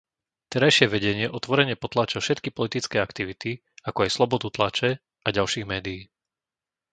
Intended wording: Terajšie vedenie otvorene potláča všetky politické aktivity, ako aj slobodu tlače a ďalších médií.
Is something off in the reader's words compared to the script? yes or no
no